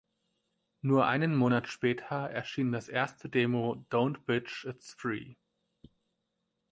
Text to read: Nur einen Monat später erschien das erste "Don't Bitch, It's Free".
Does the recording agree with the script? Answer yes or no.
no